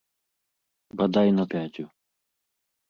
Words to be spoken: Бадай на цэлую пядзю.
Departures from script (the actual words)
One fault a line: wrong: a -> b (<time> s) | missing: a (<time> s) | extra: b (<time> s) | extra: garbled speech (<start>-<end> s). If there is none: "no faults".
missing: цэлую (1.4 s)